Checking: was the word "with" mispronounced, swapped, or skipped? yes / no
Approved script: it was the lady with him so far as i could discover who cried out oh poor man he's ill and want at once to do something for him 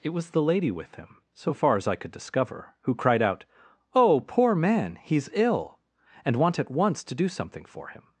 no